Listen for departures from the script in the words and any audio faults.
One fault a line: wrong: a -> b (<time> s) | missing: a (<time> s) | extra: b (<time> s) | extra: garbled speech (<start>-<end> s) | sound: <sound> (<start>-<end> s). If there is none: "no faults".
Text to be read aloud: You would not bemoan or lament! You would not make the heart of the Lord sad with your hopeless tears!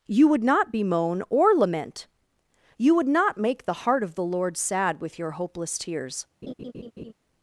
sound: laugh (6.4-7.1 s)